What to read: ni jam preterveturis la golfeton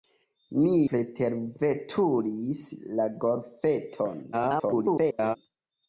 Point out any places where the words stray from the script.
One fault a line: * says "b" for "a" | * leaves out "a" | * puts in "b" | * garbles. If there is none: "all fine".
* leaves out "jam"
* garbles